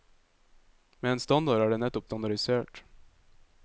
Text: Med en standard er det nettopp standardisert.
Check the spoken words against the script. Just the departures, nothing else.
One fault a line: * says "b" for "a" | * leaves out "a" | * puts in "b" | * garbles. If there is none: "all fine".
all fine